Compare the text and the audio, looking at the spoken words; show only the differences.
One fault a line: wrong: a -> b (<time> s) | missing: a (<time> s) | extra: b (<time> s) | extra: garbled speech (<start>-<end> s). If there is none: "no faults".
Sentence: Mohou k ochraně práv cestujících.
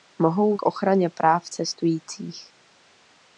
no faults